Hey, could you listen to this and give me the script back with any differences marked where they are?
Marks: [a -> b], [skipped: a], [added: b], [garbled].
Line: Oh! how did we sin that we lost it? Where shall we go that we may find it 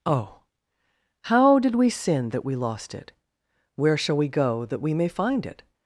Oh! how did we sin that we lost it? Where shall we go that we may find it